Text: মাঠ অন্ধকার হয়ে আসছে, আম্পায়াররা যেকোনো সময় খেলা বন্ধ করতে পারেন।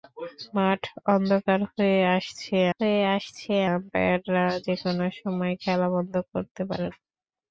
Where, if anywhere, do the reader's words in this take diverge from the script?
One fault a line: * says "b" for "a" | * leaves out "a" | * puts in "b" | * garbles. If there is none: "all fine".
* puts in "হয়ে আসছে"